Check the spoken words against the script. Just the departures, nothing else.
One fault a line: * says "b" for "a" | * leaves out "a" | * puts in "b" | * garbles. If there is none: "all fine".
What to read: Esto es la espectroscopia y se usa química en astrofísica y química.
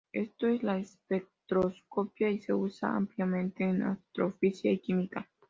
* says "ampliamente" for "química"